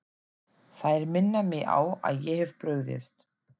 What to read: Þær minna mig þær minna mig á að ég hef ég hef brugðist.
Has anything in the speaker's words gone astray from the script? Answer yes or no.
yes